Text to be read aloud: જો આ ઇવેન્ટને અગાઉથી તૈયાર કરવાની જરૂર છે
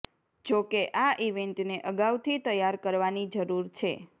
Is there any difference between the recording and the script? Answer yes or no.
yes